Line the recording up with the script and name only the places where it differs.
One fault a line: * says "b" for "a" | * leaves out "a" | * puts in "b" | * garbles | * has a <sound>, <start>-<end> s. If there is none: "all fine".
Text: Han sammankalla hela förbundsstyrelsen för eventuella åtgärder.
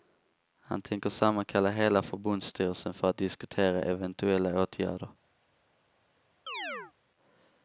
* puts in "tänker"
* puts in "att diskutera"
* has a chirp, 6.5-6.9 s